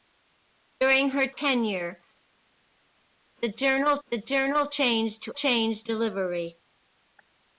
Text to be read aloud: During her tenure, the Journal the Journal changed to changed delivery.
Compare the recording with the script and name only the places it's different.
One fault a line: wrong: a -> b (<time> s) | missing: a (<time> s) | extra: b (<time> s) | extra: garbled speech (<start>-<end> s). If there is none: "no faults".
no faults